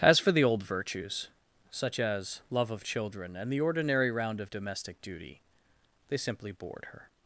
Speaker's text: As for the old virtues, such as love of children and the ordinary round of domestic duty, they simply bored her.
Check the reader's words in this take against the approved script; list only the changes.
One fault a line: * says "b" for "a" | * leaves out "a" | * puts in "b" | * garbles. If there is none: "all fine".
all fine